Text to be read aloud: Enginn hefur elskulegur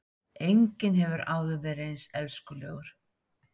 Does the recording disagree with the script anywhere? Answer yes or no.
yes